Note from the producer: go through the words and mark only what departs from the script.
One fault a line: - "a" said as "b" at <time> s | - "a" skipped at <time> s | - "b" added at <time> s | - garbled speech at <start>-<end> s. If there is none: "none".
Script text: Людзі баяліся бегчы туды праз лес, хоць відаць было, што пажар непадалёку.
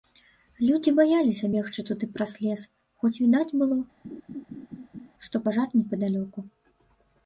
none